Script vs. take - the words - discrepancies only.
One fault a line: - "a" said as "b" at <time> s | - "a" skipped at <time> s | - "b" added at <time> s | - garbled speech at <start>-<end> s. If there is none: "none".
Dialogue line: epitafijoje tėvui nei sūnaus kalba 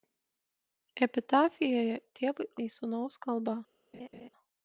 none